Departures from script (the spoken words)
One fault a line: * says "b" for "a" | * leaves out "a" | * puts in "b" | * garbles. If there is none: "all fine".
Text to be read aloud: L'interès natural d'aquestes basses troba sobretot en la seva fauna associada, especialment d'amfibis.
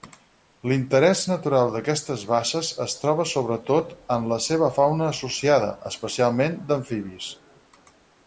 * puts in "es"